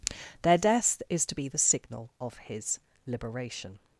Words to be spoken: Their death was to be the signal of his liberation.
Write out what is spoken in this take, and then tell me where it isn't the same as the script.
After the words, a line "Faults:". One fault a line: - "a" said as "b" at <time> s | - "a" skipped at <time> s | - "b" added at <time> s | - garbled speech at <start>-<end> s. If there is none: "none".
Their death is to be the signal of his liberation.
Faults:
- "was" said as "is" at 1.1 s